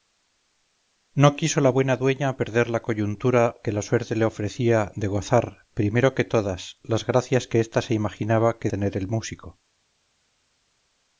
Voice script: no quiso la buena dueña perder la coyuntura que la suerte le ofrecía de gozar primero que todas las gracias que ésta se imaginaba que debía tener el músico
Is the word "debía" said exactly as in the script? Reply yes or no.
no